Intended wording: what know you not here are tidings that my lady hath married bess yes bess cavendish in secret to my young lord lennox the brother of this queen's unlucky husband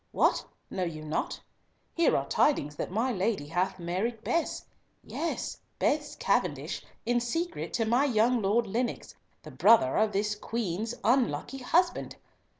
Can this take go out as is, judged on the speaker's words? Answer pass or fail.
pass